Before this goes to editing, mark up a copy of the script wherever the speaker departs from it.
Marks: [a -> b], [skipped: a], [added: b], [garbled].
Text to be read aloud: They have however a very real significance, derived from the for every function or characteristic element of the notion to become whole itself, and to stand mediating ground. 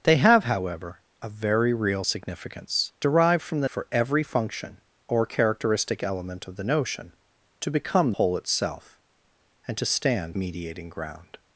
They have however a very real significance, derived from the for every function or characteristic element of the notion to become whole itself, and to stand mediating ground.